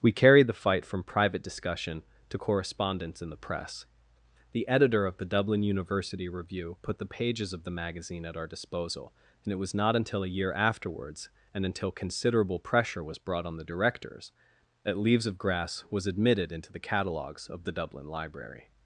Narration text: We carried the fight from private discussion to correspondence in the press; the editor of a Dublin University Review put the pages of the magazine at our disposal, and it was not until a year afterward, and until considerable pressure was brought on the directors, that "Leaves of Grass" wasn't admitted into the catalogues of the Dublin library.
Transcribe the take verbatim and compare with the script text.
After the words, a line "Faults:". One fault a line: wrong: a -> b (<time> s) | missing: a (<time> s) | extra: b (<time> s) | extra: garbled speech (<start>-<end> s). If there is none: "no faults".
We carried the fight from private discussion to correspondence in the press; the editor of the Dublin University Review put the pages of the magazine at our disposal, and it was not until a year afterwards, and until considerable pressure was brought on the directors, that "Leaves of Grass" was admitted into the catalogues of the Dublin library.
Faults:
wrong: a -> the (5.2 s)
wrong: afterward -> afterwards (10.5 s)
wrong: wasn't -> was (15.9 s)